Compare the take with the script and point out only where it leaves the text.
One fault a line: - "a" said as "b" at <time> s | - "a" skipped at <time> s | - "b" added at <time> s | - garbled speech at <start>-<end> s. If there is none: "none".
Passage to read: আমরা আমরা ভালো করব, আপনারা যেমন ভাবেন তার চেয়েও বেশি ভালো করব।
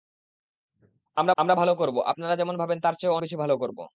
none